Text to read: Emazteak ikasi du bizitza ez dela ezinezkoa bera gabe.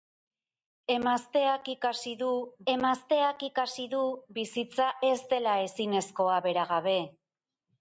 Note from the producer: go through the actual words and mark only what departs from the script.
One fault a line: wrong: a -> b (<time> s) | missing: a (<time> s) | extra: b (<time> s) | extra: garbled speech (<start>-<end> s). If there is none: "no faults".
extra: emazteak ikasi du (2.7 s)